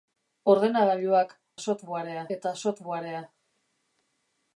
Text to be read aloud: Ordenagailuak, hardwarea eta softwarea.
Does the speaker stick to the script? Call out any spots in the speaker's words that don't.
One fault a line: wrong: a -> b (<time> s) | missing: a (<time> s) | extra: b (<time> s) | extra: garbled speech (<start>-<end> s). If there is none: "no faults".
wrong: hardwarea -> softwarea (1.7 s)